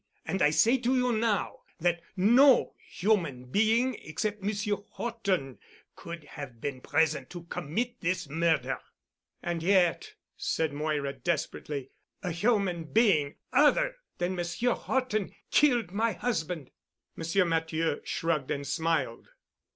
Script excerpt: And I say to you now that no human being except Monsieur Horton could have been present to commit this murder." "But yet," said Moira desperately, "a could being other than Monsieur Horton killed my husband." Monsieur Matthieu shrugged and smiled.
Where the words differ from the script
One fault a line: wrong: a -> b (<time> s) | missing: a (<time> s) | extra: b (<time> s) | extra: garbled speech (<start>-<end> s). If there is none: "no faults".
wrong: But -> And (9.4 s)
wrong: could -> human (12.3 s)